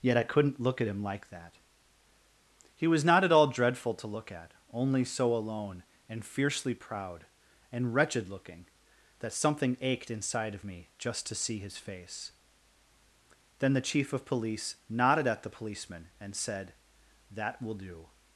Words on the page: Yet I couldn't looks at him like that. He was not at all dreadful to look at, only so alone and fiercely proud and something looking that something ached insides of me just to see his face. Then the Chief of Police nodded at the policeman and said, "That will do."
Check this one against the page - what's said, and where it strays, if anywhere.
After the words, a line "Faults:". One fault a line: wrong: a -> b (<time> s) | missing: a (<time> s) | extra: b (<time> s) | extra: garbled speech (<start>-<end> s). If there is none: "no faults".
Yet I couldn't look at him like that. He was not at all dreadful to look at, only so alone and fiercely proud and wretched looking that something ached inside of me just to see his face. Then the Chief of Police nodded at the policeman and said, "That will do."
Faults:
wrong: looks -> look (0.6 s)
wrong: something -> wretched (7.9 s)
wrong: insides -> inside (10.1 s)